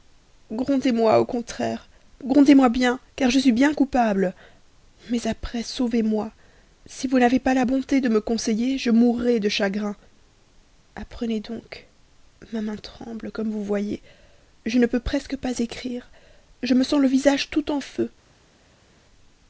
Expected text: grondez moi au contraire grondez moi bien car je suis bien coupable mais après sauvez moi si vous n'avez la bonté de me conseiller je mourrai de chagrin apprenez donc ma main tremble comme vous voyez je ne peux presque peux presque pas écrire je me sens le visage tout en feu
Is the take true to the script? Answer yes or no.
no